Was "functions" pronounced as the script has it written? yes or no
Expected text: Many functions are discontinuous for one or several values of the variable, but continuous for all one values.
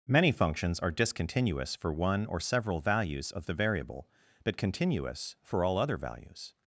yes